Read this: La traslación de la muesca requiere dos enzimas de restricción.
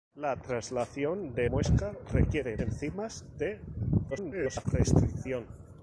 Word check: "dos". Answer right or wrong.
wrong